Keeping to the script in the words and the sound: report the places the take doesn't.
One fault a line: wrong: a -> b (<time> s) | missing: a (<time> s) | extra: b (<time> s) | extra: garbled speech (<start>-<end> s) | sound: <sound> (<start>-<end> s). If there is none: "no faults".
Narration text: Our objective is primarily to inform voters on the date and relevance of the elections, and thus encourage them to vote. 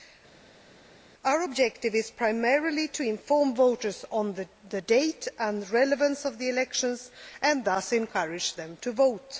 no faults